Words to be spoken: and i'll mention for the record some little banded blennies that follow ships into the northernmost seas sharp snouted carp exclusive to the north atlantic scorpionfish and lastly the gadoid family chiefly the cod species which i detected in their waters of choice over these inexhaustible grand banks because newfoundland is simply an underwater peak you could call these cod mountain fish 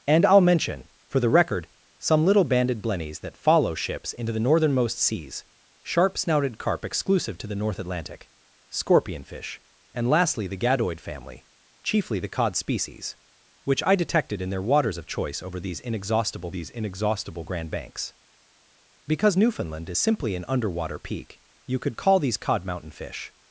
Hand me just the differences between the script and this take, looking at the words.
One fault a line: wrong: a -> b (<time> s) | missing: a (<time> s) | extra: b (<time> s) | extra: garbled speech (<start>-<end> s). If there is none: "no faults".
extra: these inexhaustible (16.5 s)